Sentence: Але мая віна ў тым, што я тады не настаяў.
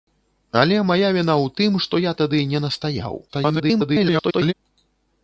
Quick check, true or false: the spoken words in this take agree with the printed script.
false